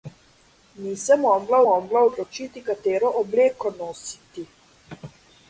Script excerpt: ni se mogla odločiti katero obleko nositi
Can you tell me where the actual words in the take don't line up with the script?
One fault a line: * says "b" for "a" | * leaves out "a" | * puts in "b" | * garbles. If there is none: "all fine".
* puts in "mogla"